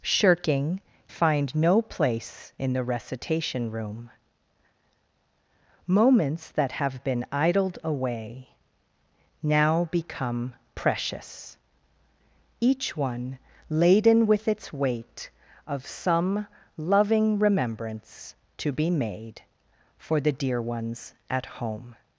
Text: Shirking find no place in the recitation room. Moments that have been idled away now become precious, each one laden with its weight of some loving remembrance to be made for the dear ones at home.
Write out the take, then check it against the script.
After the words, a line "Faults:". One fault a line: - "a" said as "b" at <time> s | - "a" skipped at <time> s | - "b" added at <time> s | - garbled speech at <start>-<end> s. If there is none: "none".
Shirking find no place in the recitation room. Moments that have been idled away now become precious, each one laden with its weight of some loving remembrance to be made for the dear ones at home.
Faults:
none